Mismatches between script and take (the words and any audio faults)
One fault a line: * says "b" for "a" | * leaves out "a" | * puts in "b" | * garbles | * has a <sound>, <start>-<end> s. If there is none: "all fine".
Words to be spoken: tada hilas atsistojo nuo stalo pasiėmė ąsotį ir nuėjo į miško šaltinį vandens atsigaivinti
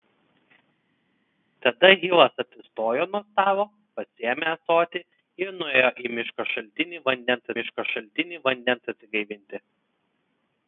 * puts in "miško šaltinį vandens"